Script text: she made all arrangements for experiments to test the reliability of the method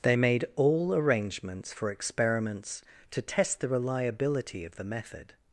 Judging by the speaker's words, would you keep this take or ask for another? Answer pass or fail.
fail